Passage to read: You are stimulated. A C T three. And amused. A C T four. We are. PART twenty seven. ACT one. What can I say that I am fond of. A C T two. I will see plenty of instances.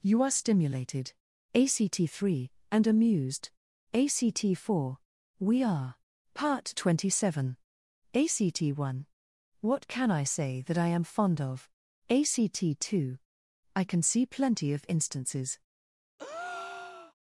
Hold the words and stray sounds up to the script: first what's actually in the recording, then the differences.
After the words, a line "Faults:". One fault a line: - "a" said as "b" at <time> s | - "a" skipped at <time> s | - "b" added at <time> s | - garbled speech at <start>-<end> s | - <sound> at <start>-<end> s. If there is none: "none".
You are stimulated. A C T three. And amused. A C T four. We are. PART twenty seven. ACT one. What can I say that I am fond of. A C T two. I can see plenty of instances.
Faults:
- "will" said as "can" at 13.8 s
- breath at 16.2-17.1 s